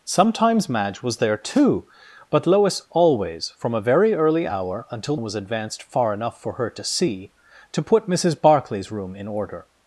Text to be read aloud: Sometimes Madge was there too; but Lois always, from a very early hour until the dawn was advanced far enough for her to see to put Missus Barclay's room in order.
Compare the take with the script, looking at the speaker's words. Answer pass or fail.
fail